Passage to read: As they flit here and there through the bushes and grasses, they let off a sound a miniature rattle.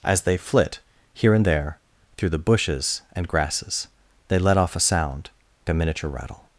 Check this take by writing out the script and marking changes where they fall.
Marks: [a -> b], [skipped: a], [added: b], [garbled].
As they flit here and there through the bushes and grasses, they let off a sound a miniature rattle.